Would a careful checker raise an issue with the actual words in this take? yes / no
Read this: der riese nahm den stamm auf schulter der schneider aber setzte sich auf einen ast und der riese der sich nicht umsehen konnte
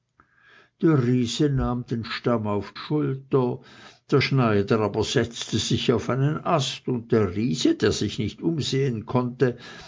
no